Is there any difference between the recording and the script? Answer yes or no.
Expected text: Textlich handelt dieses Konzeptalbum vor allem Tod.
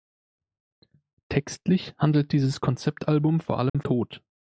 no